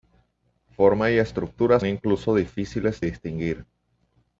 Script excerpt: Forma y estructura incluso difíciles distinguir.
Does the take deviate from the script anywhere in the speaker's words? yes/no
no